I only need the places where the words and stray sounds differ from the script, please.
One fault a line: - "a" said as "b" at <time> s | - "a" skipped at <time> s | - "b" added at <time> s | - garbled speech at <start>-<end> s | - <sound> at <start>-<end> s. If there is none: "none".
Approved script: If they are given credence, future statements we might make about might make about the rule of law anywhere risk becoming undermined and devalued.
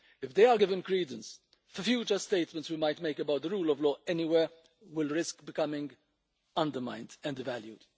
- "might make about" skipped at 3.4 s
- "will" added at 4.8 s